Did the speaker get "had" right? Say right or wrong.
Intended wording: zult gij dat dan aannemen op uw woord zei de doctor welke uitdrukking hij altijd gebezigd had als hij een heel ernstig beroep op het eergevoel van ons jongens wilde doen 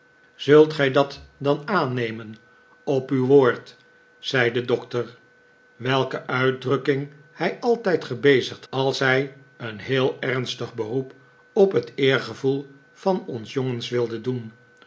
wrong